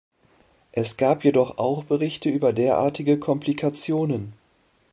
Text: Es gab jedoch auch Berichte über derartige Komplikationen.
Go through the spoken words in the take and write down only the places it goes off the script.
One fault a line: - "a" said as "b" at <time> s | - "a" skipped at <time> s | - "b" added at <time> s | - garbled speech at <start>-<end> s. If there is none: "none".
none